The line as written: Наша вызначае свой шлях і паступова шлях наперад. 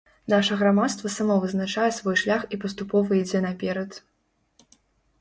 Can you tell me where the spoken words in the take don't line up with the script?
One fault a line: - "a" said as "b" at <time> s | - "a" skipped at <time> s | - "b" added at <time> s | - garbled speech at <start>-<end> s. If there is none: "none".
- "грамадства само" added at 0.6 s
- "шлях" said as "ідзе" at 3.2 s